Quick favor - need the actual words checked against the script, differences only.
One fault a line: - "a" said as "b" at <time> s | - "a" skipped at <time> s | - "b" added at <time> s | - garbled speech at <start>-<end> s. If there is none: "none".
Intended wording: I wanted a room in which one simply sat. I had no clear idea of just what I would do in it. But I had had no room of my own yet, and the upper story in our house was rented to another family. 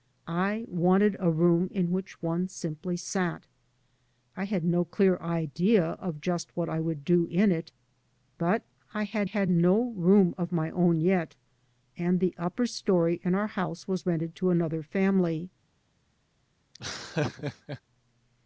none